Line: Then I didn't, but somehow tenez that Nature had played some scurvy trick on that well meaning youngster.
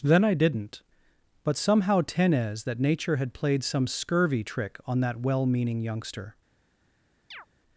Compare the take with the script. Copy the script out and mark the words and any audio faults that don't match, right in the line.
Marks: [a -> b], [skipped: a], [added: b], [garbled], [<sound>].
Then I didn't, but somehow tenez that Nature had played some scurvy trick on that well meaning youngster. [chirp]